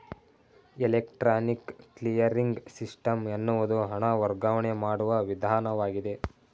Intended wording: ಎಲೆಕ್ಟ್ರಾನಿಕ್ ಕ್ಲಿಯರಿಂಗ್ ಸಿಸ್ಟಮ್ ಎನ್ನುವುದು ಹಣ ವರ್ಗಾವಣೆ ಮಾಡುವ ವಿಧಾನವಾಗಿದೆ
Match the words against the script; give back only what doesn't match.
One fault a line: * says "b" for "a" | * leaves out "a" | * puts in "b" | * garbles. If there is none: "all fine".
all fine